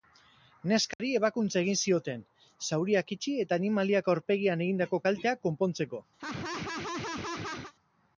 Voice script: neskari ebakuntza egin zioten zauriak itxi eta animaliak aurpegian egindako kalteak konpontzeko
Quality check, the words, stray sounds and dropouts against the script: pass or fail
fail